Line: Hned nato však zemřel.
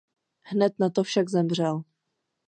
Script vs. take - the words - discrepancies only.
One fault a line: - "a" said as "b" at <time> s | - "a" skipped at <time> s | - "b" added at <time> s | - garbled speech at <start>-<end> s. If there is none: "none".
none